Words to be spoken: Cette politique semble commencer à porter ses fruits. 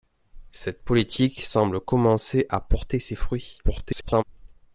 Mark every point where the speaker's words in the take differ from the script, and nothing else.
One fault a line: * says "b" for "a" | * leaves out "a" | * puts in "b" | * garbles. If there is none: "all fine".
* garbles